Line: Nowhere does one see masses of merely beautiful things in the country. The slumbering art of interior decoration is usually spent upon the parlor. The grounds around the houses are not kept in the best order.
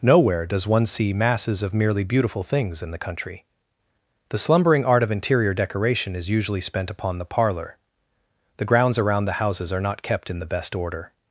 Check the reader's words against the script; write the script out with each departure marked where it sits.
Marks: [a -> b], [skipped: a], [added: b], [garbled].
Nowhere does one see masses of merely beautiful things in the country. The slumbering art of interior decoration is usually spent upon the parlor. The grounds around the houses are not kept in the best order.